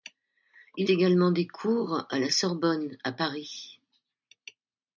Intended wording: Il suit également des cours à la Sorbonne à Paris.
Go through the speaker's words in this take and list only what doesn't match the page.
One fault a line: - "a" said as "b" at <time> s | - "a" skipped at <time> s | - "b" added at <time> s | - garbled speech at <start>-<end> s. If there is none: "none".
- "suit" skipped at 0.9 s